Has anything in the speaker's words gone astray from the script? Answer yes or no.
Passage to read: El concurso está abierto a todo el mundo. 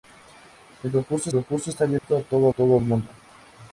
yes